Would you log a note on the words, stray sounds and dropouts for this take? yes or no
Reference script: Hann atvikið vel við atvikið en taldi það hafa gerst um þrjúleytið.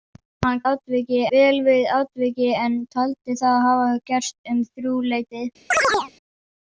yes